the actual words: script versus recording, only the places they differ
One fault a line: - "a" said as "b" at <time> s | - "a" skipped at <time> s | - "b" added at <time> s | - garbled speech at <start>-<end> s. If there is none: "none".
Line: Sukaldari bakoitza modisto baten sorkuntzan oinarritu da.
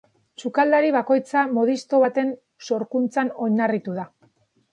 none